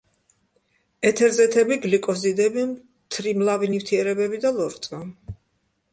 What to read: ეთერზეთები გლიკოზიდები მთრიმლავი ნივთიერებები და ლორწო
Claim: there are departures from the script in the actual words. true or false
false